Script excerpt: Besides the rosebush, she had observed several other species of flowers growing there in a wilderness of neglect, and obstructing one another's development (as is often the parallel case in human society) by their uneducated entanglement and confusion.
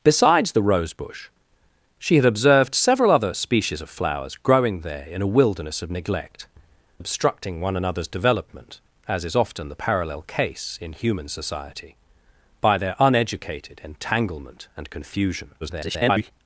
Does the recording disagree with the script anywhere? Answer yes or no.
yes